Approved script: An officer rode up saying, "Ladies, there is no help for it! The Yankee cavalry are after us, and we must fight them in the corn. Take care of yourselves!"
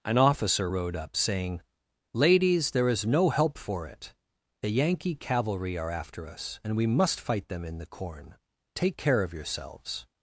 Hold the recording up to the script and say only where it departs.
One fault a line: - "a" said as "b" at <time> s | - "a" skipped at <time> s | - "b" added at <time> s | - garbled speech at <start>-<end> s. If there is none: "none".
none